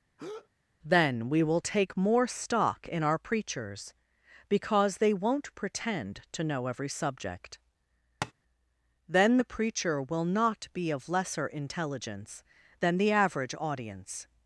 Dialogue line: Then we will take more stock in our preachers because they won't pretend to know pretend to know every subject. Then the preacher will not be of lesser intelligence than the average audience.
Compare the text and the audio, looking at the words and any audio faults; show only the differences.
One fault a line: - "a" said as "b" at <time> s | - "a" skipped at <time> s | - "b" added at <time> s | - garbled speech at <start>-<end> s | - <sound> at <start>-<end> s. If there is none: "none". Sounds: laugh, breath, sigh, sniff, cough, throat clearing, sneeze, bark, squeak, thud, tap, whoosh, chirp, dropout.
- breath at 0.2-0.5 s
- "pretend to know" skipped at 6.7 s
- tap at 8.2-8.3 s